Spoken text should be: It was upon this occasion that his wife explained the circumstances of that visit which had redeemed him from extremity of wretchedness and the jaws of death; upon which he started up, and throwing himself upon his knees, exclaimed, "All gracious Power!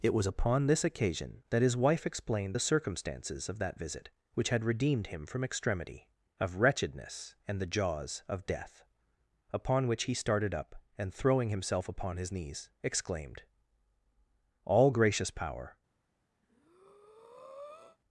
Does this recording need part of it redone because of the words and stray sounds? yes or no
yes